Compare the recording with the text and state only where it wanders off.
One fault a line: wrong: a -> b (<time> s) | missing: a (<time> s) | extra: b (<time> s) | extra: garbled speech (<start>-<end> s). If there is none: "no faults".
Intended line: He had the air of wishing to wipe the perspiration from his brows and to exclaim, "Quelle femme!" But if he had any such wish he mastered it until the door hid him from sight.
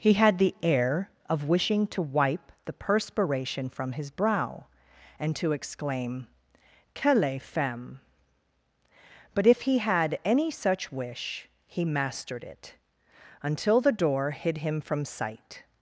wrong: brows -> brow (4.1 s)